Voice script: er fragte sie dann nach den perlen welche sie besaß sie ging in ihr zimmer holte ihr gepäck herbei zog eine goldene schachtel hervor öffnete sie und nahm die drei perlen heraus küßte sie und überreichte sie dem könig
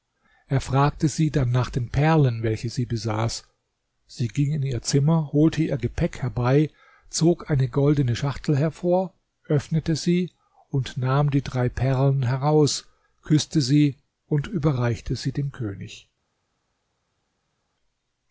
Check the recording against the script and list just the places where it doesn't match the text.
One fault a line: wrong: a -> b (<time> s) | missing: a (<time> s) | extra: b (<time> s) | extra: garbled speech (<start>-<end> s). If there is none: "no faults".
no faults